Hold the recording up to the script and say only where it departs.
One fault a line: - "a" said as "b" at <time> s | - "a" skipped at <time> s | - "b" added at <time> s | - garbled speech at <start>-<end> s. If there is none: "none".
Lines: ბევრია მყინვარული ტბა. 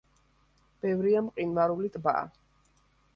none